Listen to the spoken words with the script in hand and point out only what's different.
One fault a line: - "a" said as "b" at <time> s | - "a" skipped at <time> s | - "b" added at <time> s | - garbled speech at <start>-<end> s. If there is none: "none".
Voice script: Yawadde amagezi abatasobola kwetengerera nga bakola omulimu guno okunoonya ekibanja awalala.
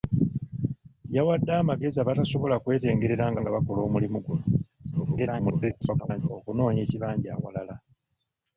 - "nga" added at 3.4 s
- garbled speech at 4.9-6.3 s